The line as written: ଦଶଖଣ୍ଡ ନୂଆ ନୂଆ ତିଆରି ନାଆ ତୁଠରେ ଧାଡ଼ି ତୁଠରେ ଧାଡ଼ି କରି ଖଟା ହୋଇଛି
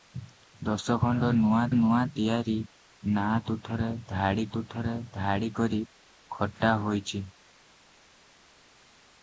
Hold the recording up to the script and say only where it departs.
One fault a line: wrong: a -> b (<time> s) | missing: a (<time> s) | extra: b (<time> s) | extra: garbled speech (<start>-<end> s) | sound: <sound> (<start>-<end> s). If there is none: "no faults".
no faults